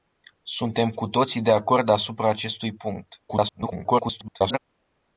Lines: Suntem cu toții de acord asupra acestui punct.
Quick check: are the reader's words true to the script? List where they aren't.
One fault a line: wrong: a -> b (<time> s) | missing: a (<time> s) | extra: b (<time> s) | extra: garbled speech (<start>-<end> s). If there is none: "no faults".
extra: garbled speech (3.3-4.6 s)